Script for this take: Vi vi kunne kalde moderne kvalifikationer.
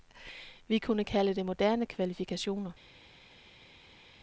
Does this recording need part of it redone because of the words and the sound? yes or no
yes